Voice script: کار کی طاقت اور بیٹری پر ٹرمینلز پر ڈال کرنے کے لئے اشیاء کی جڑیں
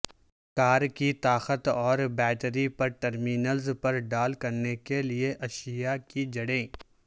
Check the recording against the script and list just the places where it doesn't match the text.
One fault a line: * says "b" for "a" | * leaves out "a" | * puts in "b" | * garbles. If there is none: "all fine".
all fine